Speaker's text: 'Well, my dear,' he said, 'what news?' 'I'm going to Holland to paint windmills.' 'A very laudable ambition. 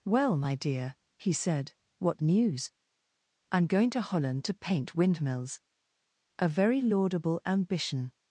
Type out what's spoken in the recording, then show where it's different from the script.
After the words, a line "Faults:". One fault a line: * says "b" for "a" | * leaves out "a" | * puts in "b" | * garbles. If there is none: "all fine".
'Well, my dear,' he said, 'what news?' 'I'm going to Holland to paint windmills.' 'A very laudable ambition.
Faults:
all fine